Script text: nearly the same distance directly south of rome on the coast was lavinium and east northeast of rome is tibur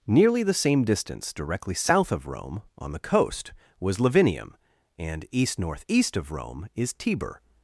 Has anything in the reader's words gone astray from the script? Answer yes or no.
no